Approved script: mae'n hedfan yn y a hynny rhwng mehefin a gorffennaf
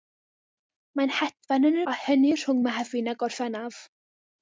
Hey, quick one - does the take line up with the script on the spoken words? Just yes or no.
yes